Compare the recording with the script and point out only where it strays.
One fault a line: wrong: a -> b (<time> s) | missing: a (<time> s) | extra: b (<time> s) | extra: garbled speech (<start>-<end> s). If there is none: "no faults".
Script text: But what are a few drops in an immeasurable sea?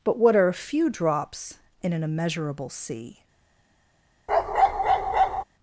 no faults